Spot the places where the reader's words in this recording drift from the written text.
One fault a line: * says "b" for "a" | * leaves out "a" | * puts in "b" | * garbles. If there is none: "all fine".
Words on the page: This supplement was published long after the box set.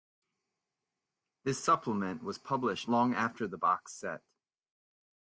all fine